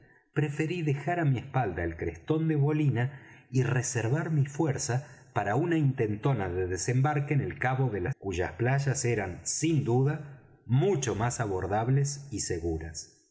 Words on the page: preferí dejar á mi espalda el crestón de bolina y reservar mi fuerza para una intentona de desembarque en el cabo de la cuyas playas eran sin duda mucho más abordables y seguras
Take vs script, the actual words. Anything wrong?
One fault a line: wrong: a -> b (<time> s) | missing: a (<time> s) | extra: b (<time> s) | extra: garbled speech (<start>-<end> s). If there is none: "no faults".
no faults